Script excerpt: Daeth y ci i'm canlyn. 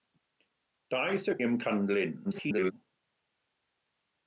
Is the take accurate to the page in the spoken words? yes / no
no